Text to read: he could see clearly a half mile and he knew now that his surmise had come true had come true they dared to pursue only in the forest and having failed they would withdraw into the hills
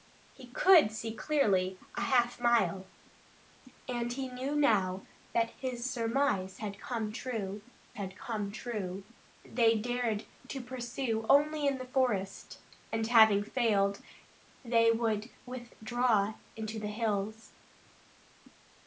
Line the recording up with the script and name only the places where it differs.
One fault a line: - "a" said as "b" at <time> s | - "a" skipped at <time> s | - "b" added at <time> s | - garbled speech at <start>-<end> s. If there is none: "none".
none